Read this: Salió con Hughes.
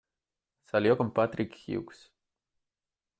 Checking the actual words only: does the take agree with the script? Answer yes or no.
no